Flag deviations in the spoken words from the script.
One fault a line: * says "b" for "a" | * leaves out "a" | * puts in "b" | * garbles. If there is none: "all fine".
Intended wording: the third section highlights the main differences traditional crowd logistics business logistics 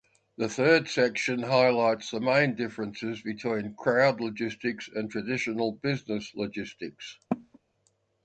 * says "between" for "traditional"
* puts in "and traditional"